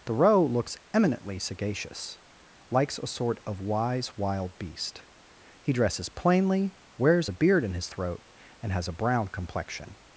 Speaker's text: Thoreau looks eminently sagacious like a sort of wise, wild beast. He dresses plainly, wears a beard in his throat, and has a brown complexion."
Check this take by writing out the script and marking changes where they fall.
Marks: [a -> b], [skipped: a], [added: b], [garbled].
Thoreau looks eminently sagacious [like -> likes] a sort of wise, wild beast. He dresses plainly, wears a beard in his throat, and has a brown complexion."